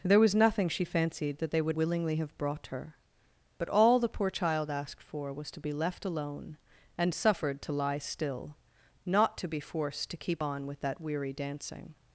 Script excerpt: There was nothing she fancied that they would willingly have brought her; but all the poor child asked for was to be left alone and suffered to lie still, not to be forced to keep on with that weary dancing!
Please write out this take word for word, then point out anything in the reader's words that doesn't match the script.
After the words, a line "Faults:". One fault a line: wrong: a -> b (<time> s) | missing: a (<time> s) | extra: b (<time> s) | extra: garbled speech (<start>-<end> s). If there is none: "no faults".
There was nothing she fancied that they would willingly have brought her; but all the poor child asked for was to be left alone and suffered to lie still, not to be forced to keep on with that weary dancing!
Faults:
no faults